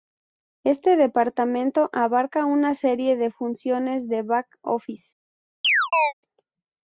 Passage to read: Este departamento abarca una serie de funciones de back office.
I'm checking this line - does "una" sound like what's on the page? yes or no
yes